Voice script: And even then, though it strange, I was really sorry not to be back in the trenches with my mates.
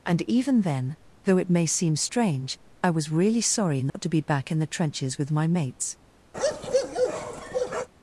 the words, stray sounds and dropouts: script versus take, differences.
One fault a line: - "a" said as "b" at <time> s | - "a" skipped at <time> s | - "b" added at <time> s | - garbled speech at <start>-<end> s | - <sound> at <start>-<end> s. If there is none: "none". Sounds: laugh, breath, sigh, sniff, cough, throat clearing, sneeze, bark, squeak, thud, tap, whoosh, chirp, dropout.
- "may seem" added at 1.5 s
- dropout at 3.9-3.9 s
- bark at 6.3-7.9 s